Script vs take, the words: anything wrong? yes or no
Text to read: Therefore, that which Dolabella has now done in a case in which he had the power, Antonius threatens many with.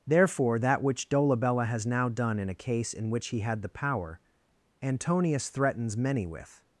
no